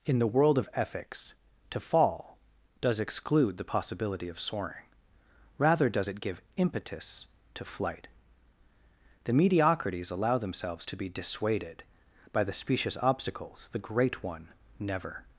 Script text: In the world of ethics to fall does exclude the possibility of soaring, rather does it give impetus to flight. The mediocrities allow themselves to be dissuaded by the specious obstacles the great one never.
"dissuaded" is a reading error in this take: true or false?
false